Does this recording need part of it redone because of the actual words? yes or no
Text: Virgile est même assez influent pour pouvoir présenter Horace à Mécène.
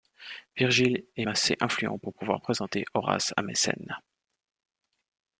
yes